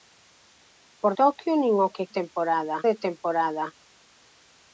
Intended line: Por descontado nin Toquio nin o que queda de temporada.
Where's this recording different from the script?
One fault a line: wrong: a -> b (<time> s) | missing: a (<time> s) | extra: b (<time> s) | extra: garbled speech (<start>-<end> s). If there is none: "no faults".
missing: descontado nin (1.1 s)
wrong: queda -> temporada (2.2 s)